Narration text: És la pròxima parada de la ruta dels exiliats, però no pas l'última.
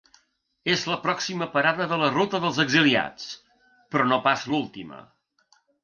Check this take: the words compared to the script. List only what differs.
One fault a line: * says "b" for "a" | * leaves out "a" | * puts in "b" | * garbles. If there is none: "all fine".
all fine